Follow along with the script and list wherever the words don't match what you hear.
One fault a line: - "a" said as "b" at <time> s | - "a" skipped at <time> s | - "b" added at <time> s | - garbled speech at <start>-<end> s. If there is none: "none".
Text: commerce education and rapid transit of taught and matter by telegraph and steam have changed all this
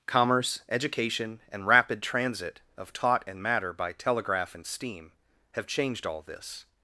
none